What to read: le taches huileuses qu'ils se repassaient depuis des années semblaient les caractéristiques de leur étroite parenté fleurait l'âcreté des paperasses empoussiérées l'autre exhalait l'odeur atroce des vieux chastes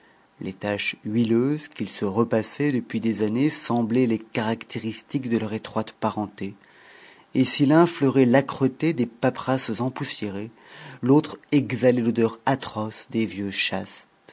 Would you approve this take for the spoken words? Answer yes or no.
no